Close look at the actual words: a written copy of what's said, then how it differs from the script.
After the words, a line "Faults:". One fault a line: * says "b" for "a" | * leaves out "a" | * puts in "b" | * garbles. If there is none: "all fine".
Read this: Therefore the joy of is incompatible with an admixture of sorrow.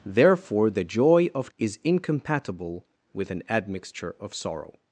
Therefore the joy of is incompatible with an admixture of sorrow.
Faults:
all fine